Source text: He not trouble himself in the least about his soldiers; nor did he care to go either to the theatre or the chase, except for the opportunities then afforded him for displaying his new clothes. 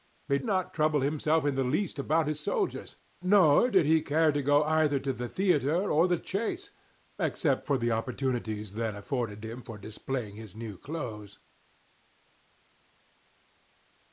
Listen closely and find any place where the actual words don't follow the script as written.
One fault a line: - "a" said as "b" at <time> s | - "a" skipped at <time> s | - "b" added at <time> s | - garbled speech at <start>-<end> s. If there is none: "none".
none